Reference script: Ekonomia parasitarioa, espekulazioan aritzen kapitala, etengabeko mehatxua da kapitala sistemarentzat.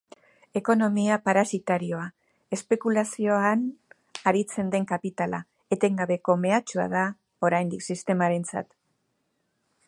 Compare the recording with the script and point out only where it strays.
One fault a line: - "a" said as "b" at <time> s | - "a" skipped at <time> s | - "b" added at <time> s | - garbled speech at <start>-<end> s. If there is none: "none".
- "den" added at 4.8 s
- "kapitala" said as "oraindik" at 7.5 s